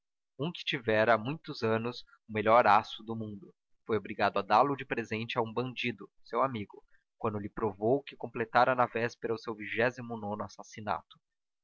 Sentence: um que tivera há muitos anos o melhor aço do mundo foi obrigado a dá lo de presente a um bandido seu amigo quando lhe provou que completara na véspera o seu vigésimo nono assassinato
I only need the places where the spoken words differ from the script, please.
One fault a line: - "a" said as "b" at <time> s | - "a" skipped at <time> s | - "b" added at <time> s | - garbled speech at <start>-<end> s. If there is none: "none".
none